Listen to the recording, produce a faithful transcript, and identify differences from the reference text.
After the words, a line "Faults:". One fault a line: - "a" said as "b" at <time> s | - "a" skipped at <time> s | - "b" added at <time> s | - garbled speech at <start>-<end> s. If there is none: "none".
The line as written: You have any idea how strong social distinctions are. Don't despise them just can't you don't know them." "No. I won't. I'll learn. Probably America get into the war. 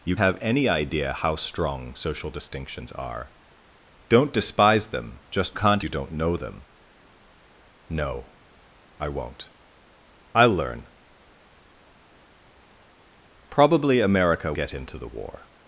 You have any idea how strong social distinctions are. Don't despise them just can't you don't know them." "No. I won't. I'll learn. Probably America get into the war.
Faults:
none